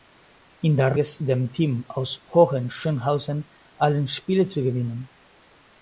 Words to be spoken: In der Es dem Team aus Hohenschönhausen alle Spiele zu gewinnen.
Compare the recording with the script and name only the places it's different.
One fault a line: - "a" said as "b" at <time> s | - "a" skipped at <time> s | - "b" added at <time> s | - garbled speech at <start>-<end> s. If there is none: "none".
none